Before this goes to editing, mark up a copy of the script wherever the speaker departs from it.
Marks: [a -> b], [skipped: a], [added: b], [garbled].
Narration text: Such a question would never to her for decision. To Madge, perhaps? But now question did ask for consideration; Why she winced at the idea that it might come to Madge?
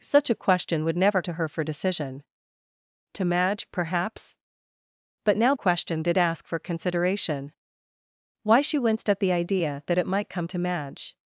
Such a question would never to her for decision. To Madge, perhaps? But now question did ask for consideration; Why she winced at the idea that it might come to Madge?